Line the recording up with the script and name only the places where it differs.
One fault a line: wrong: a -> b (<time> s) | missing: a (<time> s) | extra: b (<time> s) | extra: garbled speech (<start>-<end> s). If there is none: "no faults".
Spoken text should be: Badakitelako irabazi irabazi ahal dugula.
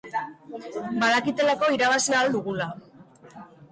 missing: irabazi (2.1 s)